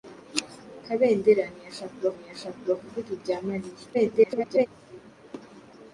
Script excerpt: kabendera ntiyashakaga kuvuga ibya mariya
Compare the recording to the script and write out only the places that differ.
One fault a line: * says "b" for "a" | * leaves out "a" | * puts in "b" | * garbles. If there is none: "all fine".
* puts in "ntiyashakaga"
* garbles